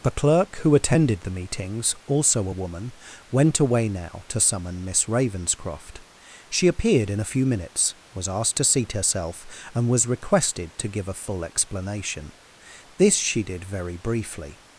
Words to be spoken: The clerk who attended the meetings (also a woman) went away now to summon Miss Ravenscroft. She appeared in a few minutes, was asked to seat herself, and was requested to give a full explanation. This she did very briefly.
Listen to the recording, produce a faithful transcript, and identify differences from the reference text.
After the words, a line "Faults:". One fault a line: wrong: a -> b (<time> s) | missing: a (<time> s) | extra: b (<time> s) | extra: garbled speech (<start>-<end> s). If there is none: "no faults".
The clerk who attended the meetings (also a woman) went away now to summon Miss Ravenscroft. She appeared in a few minutes, was asked to seat herself, and was requested to give a full explanation. This she did very briefly.
Faults:
no faults